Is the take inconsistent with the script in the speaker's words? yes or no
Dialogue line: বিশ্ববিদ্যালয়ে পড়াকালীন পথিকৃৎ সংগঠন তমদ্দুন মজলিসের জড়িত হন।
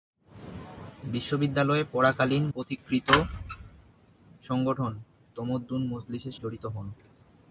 no